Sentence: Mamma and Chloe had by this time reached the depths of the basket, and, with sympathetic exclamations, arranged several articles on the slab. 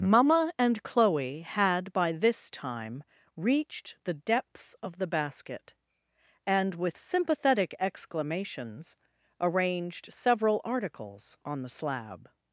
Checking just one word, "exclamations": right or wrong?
right